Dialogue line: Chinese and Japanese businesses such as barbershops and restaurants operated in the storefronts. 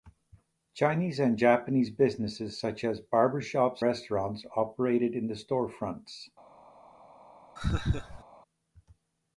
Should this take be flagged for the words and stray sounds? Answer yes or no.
yes